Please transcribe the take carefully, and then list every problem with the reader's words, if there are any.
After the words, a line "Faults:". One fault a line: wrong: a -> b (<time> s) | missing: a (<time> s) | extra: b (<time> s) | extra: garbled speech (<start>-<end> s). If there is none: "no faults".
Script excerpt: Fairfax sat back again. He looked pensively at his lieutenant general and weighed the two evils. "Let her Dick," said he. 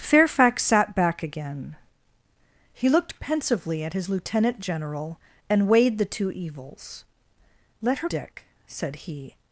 Fairfax sat back again. He looked pensively at his lieutenant general and weighed the two evils. "Let her Dick," said he.
Faults:
no faults